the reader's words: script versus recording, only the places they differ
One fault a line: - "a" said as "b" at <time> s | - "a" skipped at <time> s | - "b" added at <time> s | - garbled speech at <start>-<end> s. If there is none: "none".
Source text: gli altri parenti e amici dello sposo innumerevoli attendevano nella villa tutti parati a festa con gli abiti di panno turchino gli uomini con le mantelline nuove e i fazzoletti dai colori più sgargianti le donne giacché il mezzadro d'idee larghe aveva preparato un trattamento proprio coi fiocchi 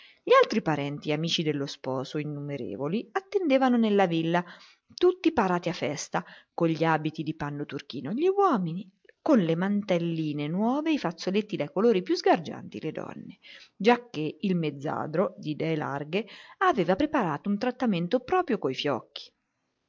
none